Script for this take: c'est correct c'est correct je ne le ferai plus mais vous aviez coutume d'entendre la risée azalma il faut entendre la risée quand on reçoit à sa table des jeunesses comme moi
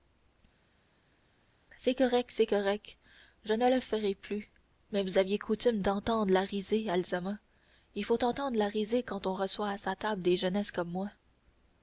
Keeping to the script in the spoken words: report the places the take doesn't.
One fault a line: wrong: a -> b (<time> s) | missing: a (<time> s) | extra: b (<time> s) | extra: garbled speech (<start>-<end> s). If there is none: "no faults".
no faults